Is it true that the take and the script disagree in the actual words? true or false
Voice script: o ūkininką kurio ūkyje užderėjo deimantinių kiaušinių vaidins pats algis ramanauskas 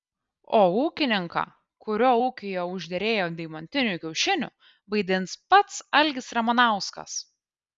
false